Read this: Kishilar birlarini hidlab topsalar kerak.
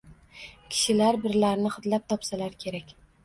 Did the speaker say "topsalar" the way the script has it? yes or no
yes